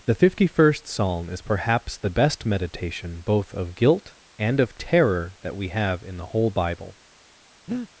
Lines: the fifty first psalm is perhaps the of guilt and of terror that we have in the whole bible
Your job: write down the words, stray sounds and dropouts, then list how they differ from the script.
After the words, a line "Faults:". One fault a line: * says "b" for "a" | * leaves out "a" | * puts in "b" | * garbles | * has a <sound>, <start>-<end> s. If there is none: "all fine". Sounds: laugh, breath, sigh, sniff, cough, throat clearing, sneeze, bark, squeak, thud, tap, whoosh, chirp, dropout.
the fifty first psalm is perhaps the best meditation both of guilt and of terror that we have in the whole bible
Faults:
* puts in "best meditation both"
* has a breath, 7.7-7.9 s